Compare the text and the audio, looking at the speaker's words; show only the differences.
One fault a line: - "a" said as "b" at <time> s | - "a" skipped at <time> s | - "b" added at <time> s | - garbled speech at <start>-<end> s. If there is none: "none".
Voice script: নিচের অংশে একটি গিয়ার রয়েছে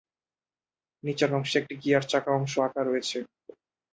- "চাকা অংশ আঁকা" added at 2.1 s